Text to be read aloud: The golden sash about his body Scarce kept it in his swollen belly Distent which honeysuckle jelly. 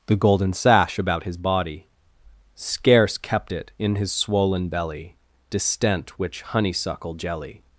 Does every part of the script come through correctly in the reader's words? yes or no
yes